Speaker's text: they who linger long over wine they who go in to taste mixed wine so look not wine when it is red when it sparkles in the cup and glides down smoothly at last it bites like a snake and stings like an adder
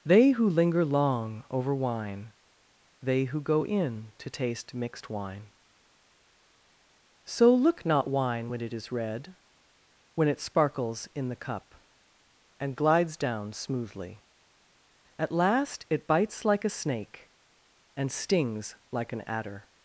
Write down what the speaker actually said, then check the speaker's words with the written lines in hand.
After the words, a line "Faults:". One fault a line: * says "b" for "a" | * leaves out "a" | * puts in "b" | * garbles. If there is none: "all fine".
they who linger long over wine they who go in to taste mixed wine so look not wine when it is red when it sparkles in the cup and glides down smoothly at last it bites like a snake and stings like an adder
Faults:
all fine